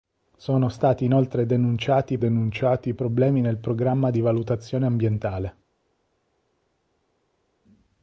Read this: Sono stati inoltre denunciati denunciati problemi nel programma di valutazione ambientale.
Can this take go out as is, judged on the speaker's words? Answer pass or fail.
pass